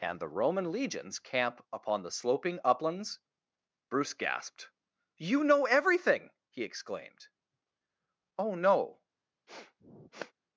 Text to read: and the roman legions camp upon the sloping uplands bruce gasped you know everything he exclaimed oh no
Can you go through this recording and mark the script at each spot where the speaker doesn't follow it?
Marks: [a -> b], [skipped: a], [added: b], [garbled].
and the roman legions camp upon the sloping uplands bruce gasped you know everything he exclaimed oh no